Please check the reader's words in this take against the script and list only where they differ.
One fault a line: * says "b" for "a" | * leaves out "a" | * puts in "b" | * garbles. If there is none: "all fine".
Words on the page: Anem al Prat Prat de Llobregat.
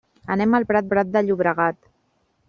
all fine